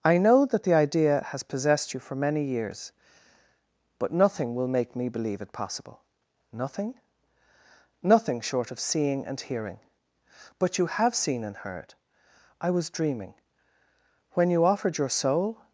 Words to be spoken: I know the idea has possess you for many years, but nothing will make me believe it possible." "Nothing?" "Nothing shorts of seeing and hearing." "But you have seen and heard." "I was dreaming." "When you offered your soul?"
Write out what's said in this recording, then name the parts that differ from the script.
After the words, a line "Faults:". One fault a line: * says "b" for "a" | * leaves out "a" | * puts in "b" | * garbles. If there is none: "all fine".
I know that the idea has possessed you for many years, but nothing will make me believe it possible." "Nothing?" "Nothing short of seeing and hearing." "But you have seen and heard." "I was dreaming." "When you offered your soul?"
Faults:
* puts in "that"
* says "possessed" for "possess"
* says "short" for "shorts"